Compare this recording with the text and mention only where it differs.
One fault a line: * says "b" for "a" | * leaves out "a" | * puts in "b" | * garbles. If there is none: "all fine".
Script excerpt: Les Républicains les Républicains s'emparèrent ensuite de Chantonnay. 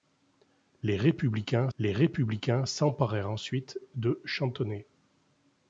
all fine